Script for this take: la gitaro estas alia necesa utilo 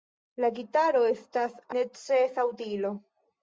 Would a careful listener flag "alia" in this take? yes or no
yes